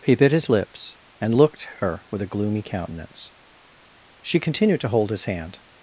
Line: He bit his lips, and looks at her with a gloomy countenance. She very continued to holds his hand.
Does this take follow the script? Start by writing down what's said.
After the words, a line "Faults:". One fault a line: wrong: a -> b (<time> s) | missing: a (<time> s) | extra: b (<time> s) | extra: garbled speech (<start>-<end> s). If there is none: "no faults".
He bit his lips, and looked at her with a gloomy countenance. She continued to hold his hand.
Faults:
wrong: looks -> looked (1.3 s)
missing: very (4.4 s)
wrong: holds -> hold (4.9 s)